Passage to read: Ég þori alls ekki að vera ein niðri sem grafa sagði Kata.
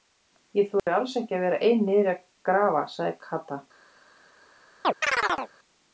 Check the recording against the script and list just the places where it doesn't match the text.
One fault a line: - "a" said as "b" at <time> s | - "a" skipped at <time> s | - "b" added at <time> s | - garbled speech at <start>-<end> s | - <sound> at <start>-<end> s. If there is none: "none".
- dropout at 0.8-0.9 s
- "sem" said as "að" at 2.1 s
- chirp at 4.8-5.5 s